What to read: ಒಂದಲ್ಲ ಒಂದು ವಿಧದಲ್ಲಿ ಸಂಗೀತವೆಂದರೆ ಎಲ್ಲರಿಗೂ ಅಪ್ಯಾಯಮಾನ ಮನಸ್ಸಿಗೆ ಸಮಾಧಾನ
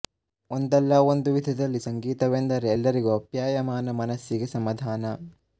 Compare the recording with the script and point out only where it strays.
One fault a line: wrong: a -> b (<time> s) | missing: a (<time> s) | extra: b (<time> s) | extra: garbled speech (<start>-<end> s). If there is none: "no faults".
no faults